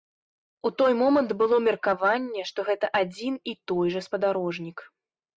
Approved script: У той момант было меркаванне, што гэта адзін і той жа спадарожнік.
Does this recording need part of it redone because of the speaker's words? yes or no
no